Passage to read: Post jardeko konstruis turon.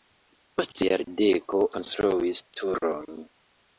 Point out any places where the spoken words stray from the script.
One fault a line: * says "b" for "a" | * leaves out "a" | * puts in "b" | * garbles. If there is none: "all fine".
all fine